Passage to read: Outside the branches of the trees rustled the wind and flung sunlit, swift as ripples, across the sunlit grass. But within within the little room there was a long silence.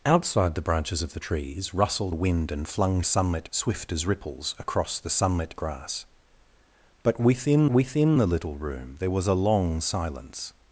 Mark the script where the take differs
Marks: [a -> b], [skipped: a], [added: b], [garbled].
Outside the branches of the trees rustled the wind and flung sunlit, swift as ripples, across the sunlit grass. But within within the little room there was a long silence.